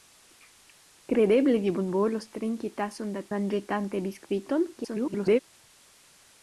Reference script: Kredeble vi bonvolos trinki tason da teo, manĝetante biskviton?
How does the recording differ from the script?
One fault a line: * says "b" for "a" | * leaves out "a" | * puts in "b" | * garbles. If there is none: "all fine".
* leaves out "teo"
* garbles